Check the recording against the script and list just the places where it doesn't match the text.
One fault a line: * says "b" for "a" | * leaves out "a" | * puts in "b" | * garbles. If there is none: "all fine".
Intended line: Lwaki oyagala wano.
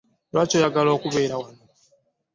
* puts in "okubeera"